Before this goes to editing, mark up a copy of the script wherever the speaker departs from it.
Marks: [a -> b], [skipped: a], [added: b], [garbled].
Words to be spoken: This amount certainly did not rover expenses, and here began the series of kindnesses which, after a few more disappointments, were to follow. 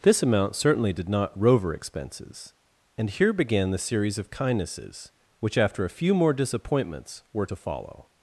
This amount certainly did not rover expenses, and here began the series of kindnesses which, after a few more disappointments, were to follow.